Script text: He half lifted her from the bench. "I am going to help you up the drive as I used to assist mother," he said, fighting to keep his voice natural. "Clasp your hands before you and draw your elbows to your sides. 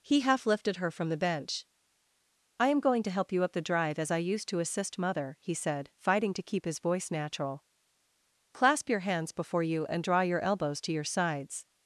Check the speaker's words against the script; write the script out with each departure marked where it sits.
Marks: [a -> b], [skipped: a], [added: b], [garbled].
He half lifted her from the bench. "I am going to help you up the drive as I used to assist mother," he said, fighting to keep his voice natural. "Clasp your hands before you and draw your elbows to your sides.